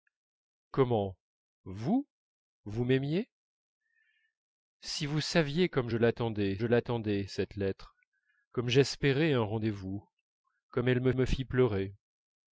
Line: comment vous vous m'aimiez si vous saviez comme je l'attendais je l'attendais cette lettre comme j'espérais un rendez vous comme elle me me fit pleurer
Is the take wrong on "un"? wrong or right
right